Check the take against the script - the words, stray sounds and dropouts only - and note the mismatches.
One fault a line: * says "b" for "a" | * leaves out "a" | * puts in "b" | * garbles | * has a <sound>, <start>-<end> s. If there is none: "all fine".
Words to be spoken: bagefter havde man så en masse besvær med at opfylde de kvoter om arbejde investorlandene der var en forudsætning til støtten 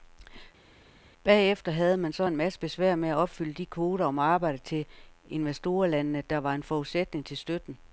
* puts in "til"